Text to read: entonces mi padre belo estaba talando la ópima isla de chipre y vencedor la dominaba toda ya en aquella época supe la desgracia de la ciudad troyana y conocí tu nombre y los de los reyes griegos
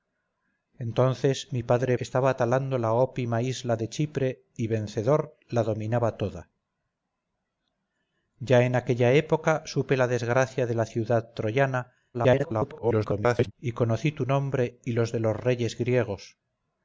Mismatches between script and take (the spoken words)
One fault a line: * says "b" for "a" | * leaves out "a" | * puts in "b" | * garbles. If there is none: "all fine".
* leaves out "belo"
* garbles